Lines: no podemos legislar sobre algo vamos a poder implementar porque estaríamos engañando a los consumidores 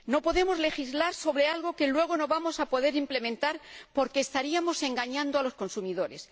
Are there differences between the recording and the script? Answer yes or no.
yes